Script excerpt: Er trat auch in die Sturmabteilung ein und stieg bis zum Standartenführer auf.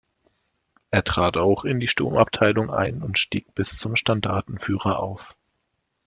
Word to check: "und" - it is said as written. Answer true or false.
true